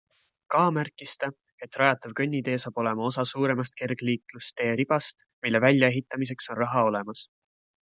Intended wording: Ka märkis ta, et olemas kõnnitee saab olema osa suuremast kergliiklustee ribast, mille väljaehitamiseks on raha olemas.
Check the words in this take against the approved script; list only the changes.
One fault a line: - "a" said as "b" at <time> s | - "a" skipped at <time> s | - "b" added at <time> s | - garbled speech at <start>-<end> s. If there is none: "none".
- "olemas" said as "rajatav" at 1.8 s